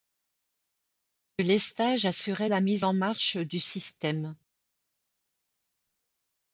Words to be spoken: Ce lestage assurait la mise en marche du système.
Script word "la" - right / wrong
right